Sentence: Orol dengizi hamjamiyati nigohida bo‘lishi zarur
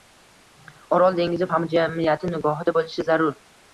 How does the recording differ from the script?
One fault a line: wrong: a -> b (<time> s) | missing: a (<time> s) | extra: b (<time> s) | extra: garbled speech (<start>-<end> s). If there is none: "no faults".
no faults